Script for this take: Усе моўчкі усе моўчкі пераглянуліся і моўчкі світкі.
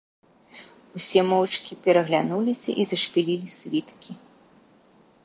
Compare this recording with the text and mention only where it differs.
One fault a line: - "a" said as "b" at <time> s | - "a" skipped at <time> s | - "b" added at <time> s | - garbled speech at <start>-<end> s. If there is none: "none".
- "усе моўчкі" skipped at 1.8 s
- "моўчкі" said as "зашпілілі" at 2.9 s